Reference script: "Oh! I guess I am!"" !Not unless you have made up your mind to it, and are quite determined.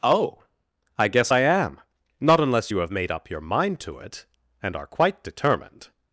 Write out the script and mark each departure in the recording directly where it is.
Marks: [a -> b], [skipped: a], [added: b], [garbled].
"Oh! I guess I am!"" !Not unless you have made up your mind to it, and are quite determined.